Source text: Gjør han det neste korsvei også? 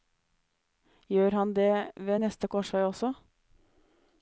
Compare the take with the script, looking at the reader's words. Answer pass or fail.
fail